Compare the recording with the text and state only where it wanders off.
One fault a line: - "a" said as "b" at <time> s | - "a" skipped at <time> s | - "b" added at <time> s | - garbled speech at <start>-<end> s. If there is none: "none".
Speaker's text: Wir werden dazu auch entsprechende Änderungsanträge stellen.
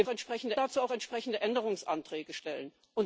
- "werden" said as "entsprechende" at 0.1 s